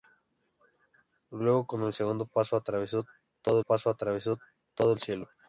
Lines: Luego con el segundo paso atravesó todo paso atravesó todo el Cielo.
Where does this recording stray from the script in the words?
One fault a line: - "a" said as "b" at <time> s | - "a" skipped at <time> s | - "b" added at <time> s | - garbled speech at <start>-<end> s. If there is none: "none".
none